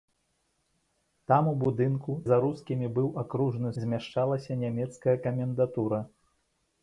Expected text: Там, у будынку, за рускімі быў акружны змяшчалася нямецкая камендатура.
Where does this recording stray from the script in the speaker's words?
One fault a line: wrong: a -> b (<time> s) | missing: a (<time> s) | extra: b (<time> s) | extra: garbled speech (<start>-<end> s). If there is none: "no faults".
no faults